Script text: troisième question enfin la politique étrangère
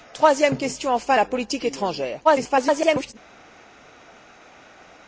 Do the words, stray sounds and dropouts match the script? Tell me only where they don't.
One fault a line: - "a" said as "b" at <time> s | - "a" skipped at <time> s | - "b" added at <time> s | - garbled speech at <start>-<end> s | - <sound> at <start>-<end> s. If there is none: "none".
- garbled speech at 2.2-3.1 s